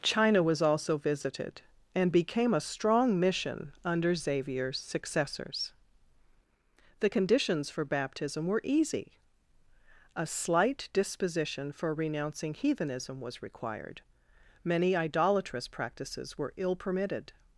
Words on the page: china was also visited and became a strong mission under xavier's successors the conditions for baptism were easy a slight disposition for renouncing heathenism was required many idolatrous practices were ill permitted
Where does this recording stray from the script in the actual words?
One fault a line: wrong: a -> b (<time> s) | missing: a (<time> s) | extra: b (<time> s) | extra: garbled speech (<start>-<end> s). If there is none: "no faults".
no faults